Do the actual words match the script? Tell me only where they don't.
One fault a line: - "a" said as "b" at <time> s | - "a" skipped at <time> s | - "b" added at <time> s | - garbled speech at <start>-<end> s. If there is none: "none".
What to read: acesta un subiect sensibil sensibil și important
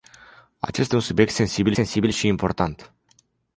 none